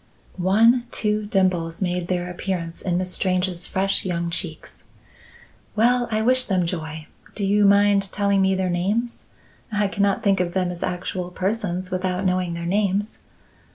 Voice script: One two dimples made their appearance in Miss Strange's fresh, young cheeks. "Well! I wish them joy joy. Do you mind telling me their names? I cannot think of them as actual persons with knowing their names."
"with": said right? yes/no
no